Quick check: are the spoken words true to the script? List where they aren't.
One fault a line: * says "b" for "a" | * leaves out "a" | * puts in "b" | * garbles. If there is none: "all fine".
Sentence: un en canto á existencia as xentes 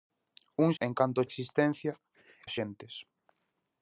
all fine